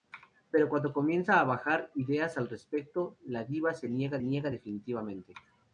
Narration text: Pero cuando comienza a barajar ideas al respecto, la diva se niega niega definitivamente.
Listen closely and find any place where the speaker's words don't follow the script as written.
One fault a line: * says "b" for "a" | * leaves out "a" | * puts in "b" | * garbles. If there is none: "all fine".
all fine